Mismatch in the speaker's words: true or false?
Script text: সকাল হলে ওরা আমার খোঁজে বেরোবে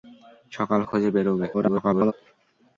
true